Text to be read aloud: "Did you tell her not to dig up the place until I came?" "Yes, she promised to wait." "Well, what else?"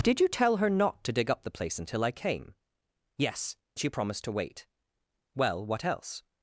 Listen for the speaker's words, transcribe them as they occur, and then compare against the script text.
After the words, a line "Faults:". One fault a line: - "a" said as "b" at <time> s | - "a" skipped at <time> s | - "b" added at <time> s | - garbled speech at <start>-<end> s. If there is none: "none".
"Did you tell her not to dig up the place until I came?" "Yes, she promised to wait." "Well, what else?"
Faults:
none